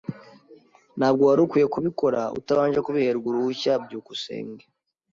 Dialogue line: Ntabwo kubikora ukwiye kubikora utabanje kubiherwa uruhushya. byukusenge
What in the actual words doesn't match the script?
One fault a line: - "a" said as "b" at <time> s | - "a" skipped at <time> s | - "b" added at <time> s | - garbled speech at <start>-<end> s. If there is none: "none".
- "kubikora" said as "wari" at 1.3 s